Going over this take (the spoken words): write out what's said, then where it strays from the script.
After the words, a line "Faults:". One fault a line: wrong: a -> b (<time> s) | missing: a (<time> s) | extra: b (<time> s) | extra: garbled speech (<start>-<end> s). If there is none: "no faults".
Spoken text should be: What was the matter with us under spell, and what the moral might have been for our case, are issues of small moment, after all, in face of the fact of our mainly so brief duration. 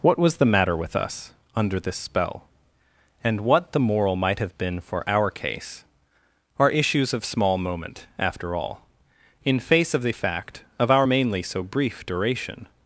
What was the matter with us under this spell, and what the moral might have been for our case, are issues of small moment, after all, in face of the fact of our mainly so brief duration.
Faults:
extra: this (1.8 s)